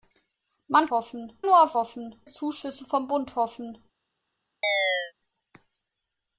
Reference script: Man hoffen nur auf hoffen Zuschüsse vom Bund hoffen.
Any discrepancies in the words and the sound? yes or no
yes